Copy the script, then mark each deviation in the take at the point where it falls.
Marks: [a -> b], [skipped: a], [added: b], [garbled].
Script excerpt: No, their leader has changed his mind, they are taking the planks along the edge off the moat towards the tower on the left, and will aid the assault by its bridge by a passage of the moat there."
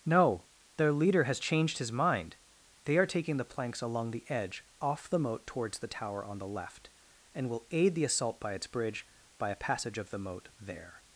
No, their leader has changed his mind, they are taking the planks along the edge off the moat towards the tower on the left, and will aid the assault by its bridge by a passage of the moat there."